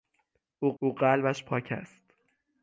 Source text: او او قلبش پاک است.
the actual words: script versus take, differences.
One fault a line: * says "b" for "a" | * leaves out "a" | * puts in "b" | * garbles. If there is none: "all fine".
all fine